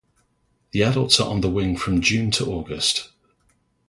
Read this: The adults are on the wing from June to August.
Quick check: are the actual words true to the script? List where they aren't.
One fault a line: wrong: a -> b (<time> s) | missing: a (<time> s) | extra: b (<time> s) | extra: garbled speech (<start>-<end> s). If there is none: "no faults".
no faults